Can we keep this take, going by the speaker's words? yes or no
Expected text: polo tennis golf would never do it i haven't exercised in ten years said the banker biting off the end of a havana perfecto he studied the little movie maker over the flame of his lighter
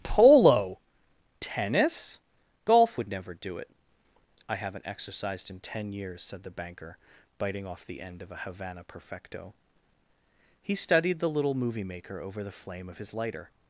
yes